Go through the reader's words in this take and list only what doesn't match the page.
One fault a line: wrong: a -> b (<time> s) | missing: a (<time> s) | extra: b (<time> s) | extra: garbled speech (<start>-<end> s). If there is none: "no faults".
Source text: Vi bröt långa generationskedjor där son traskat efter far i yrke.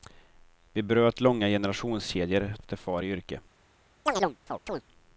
missing: där son traskat (2.5 s)